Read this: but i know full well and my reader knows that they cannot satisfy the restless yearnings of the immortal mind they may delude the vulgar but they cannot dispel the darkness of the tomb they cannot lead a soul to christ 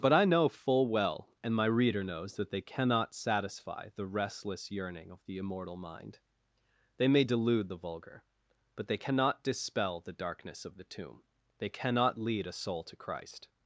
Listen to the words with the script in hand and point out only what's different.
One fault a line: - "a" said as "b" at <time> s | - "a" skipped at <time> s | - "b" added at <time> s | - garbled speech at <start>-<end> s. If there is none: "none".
- "yearnings" said as "yearning" at 4.7 s